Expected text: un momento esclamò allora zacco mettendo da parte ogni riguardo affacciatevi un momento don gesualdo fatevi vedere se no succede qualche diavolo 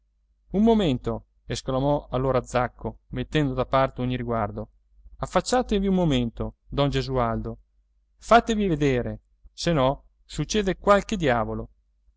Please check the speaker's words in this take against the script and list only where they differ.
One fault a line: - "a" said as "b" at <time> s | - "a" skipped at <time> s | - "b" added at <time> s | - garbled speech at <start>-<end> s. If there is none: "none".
none